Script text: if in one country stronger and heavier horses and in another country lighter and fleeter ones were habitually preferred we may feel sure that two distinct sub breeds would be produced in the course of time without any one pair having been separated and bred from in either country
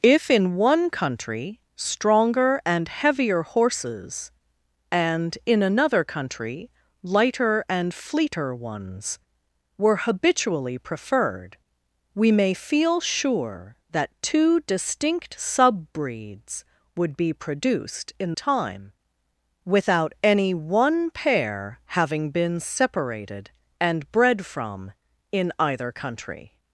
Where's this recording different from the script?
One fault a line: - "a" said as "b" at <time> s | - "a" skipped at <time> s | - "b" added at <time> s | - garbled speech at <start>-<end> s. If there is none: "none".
- "the course of" skipped at 18.3 s